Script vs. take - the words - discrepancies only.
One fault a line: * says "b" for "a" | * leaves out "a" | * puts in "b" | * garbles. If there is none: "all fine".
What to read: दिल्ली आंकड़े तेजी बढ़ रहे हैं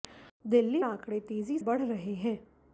all fine